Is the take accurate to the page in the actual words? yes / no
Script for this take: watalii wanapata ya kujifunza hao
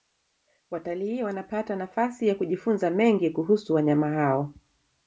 no